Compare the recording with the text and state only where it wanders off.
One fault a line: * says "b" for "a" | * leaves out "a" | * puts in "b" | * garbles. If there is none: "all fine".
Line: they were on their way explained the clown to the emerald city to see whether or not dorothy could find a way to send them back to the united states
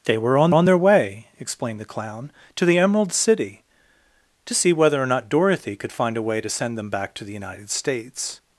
* puts in "on"